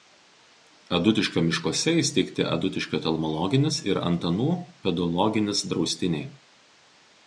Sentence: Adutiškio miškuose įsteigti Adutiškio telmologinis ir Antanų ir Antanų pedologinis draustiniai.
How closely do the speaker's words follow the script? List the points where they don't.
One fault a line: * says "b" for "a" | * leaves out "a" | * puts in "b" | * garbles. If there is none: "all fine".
* leaves out "ir Antanų"